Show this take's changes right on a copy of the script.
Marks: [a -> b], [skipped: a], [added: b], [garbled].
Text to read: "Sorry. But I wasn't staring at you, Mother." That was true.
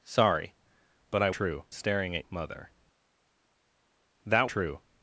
"Sorry. But I [wasn't -> true] staring at [skipped: you,] Mother." That [skipped: was] true.